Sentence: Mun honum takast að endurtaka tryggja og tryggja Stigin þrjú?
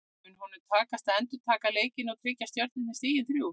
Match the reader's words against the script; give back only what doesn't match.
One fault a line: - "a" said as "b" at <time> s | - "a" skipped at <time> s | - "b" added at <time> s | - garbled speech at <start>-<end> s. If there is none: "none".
- "tryggja" said as "leikinn" at 1.8 s
- "Stjörnunni" added at 2.5 s